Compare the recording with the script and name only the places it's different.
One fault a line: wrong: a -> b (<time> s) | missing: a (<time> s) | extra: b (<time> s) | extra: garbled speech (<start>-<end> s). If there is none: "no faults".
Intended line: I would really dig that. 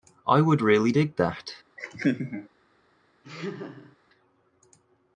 no faults